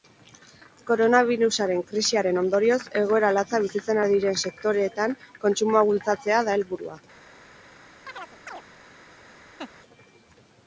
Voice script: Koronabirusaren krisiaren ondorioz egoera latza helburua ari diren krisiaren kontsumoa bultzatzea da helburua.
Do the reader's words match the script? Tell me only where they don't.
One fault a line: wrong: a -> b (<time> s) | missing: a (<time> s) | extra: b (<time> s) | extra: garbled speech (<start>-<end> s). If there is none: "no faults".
wrong: helburua -> bizitzen (3.7 s)
wrong: krisiaren -> sektoreetan (4.5 s)